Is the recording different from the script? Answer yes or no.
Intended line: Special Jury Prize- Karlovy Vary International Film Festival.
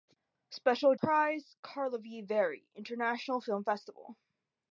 yes